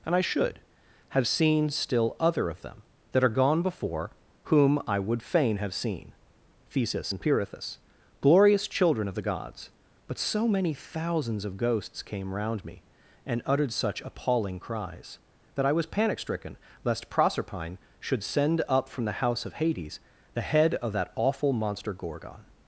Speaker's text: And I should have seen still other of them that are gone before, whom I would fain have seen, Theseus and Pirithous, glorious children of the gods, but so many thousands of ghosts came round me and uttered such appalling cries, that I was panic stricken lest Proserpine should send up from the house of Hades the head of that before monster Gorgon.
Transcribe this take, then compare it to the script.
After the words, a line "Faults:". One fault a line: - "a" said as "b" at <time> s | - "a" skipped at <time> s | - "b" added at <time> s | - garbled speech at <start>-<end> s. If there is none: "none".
And I should have seen still other of them that are gone before, whom I would fain have seen, Theseus and Pirithous, glorious children of the gods, but so many thousands of ghosts came round me and uttered such appalling cries, that I was panic stricken lest Proserpine should send up from the house of Hades the head of that awful monster Gorgon.
Faults:
- "before" said as "awful" at 21.1 s